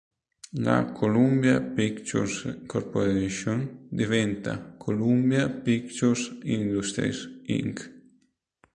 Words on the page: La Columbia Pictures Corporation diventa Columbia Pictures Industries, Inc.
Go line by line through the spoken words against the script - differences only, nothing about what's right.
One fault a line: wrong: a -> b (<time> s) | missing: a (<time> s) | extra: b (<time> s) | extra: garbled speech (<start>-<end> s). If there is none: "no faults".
no faults